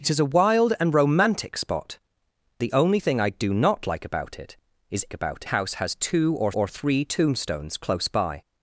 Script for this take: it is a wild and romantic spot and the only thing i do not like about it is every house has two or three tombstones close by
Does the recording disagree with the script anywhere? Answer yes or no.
yes